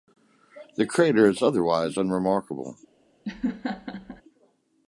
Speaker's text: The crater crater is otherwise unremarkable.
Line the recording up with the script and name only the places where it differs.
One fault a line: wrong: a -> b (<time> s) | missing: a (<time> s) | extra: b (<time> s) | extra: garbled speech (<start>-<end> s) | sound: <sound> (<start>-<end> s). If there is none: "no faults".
missing: crater (1.3 s)
sound: laugh (3.2-4.2 s)